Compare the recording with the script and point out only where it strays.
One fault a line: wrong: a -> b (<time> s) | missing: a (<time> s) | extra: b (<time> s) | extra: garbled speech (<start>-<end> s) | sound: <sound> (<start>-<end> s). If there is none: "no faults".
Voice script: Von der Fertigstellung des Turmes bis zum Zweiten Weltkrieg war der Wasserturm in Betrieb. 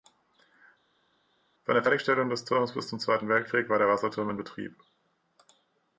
no faults